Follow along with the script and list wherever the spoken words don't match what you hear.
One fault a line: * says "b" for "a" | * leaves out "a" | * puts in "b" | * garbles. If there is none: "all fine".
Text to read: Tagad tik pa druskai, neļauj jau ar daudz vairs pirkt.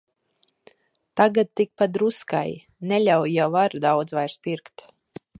all fine